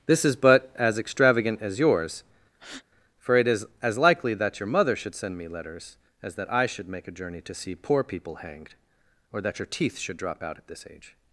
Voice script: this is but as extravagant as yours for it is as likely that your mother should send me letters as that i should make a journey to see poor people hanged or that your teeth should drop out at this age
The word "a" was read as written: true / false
true